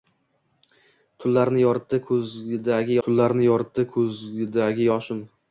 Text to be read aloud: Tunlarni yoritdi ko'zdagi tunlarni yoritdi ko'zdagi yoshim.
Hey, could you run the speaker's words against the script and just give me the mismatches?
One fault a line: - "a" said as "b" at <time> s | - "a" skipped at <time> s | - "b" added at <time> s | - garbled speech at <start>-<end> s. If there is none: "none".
none